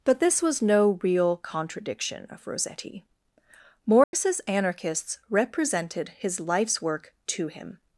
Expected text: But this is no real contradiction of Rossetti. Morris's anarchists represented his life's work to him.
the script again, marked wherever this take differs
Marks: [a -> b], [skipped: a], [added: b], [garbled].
But this [is -> was] no real contradiction of Rossetti. Morris's anarchists represented his life's work to him.